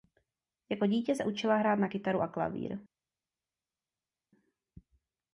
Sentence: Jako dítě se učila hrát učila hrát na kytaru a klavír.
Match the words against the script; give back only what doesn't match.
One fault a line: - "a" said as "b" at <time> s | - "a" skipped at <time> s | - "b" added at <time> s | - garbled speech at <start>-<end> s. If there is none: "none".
- "učila hrát" skipped at 1.8 s